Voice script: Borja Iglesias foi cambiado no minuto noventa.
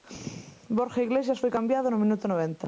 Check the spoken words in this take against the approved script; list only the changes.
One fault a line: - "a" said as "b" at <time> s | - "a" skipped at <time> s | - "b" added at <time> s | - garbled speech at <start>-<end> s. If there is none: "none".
none